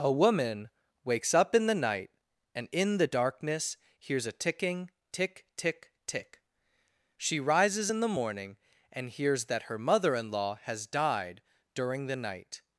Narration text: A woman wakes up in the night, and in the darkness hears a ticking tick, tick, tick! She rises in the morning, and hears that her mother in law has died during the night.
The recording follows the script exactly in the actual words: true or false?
true